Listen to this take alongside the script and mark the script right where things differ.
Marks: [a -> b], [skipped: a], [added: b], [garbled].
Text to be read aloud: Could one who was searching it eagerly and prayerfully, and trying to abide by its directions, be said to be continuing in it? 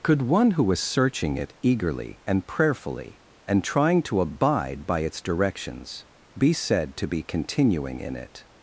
Could one who was searching it eagerly and prayerfully, and trying to abide by its directions, be said to be continuing in it?